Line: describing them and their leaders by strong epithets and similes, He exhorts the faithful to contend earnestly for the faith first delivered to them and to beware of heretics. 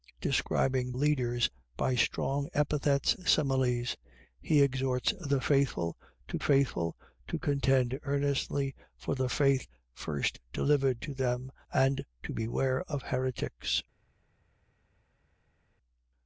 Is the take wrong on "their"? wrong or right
wrong